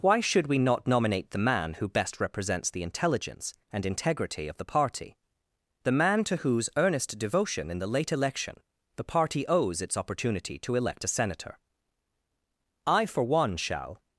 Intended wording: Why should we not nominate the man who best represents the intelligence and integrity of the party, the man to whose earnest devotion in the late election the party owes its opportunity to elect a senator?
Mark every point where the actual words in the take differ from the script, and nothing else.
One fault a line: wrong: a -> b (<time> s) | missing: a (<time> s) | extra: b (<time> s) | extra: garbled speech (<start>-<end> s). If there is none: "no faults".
extra: I for one shall (12.9 s)